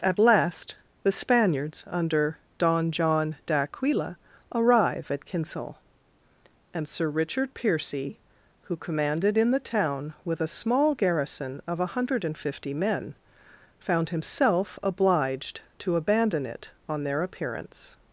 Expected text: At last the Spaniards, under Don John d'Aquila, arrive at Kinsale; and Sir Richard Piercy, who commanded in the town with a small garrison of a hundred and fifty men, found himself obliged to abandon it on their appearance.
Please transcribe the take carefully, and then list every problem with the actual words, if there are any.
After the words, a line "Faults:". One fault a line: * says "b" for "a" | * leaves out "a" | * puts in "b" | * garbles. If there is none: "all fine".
At last the Spaniards, under Don John d'Aquila, arrive at Kinsale; and Sir Richard Piercy, who commanded in the town with a small garrison of a hundred and fifty men, found himself obliged to abandon it on their appearance.
Faults:
all fine